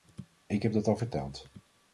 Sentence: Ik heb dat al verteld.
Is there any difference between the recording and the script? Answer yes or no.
no